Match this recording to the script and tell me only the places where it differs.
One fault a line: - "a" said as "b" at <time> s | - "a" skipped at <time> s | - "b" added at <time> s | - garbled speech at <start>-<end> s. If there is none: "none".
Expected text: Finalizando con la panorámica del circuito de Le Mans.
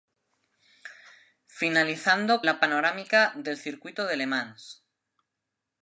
- "con" skipped at 2.4 s